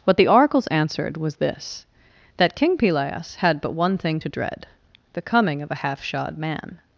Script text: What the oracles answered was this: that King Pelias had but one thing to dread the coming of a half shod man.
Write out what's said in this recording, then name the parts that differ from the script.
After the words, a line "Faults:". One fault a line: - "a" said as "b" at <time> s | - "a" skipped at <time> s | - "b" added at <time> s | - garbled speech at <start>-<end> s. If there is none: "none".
What the oracles answered was this: that King Pelias had but one thing to dread the coming of a half shod man.
Faults:
none